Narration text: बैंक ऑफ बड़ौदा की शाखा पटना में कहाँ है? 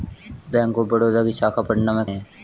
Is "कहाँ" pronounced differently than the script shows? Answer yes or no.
yes